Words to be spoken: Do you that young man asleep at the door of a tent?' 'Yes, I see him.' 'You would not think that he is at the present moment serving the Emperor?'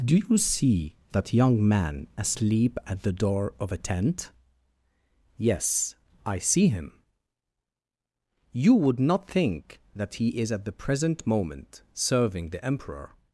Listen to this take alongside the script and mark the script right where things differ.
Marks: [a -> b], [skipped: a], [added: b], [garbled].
Do you [added: see] that young man asleep at the door of a tent?' 'Yes, I see him.' 'You would not think that he is at the present moment serving the Emperor?'